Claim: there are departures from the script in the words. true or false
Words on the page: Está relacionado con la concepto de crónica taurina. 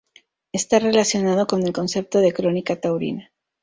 true